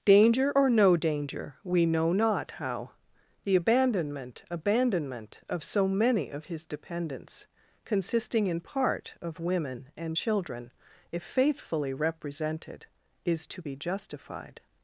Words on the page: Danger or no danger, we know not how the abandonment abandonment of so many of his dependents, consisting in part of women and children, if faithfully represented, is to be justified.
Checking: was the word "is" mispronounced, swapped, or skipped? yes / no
no